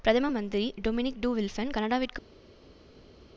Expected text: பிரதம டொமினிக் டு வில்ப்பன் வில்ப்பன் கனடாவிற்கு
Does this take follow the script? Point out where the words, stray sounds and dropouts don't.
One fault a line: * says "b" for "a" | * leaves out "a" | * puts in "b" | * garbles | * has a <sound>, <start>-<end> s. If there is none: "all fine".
* puts in "மந்திரி"
* leaves out "வில்ப்பன்"